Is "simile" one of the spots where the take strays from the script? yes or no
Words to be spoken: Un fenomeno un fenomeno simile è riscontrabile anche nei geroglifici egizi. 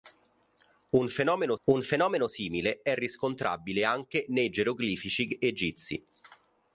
no